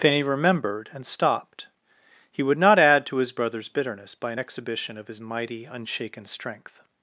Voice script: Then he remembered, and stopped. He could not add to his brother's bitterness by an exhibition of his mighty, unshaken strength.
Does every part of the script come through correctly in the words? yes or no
no